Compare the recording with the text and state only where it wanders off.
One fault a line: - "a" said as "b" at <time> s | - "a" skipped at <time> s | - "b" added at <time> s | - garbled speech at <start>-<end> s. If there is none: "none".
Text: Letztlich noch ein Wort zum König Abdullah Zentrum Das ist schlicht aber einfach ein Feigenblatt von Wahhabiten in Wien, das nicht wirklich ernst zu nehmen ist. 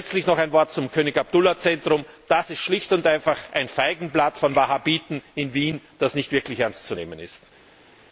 - "aber" said as "und" at 2.9 s